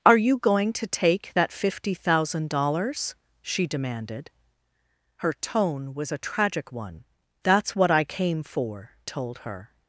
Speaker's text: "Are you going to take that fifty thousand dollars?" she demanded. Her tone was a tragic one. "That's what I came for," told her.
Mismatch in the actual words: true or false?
false